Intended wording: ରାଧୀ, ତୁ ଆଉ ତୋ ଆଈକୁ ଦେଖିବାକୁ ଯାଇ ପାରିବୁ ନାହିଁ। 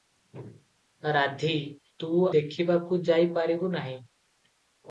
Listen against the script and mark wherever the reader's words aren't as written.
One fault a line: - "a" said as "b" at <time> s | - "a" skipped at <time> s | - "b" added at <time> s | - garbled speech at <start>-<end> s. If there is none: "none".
- "ଆଉ ତୋ ଆଈକୁ" skipped at 2.1 s